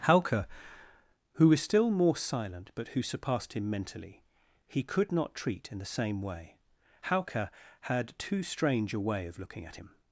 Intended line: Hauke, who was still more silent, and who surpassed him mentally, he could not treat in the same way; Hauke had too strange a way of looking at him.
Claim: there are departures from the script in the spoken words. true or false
true